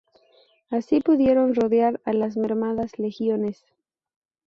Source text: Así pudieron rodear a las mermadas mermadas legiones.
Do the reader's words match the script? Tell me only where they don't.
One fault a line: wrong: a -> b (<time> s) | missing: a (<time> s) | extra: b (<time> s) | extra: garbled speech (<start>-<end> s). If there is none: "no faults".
missing: mermadas (3.0 s)